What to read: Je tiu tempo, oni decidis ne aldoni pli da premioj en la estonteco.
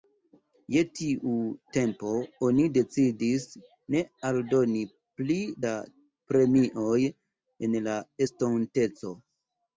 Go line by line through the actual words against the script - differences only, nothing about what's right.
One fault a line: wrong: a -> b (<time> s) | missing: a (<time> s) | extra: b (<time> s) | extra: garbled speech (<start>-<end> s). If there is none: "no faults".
no faults